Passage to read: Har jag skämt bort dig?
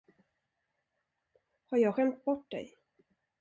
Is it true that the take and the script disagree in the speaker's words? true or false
false